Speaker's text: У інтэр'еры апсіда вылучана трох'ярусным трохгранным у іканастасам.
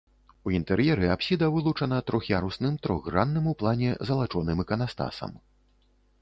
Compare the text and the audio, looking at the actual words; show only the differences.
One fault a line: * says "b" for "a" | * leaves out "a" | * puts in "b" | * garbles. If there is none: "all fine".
* puts in "плане залачоным"